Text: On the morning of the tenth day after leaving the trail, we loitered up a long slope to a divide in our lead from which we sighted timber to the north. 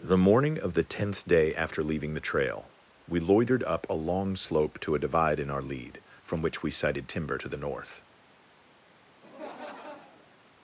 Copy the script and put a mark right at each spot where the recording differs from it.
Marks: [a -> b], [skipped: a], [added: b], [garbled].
[skipped: On] the morning of the tenth day after leaving the trail, we loitered up a long slope to a divide in our lead from which we sighted timber to the north.